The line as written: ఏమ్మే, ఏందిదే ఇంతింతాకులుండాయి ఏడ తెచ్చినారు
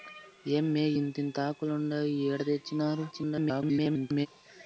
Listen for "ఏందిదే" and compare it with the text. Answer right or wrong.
wrong